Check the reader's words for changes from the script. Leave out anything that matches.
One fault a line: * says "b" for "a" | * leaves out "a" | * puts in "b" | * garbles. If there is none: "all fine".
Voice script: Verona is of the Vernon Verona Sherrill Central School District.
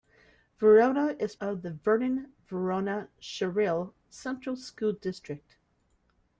all fine